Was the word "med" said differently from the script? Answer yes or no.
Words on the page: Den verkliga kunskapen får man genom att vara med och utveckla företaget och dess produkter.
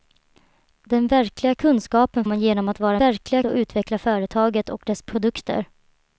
yes